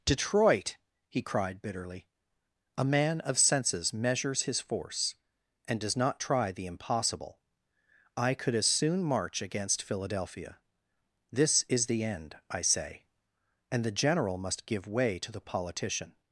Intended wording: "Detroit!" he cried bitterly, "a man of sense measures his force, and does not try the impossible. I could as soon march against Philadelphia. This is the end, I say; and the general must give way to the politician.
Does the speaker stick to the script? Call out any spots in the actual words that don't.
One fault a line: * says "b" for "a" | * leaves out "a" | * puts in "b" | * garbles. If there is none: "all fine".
* says "senses" for "sense"